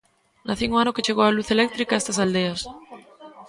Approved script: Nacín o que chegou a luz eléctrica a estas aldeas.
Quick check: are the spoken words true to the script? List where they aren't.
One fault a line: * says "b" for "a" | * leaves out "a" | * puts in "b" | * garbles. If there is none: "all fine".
* puts in "ano"